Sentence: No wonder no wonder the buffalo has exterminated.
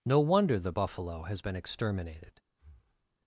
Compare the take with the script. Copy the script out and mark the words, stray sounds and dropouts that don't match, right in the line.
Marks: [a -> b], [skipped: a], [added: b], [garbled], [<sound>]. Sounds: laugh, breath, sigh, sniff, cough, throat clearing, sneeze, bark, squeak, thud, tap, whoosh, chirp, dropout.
No wonder [skipped: no wonder] the buffalo has [added: been] exterminated. [breath]